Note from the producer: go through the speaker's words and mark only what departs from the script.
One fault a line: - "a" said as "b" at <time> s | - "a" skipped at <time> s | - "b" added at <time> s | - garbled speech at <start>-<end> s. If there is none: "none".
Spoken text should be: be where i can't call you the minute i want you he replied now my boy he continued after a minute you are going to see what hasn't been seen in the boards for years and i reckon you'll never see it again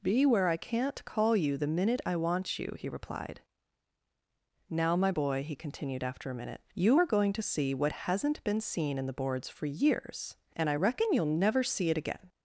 none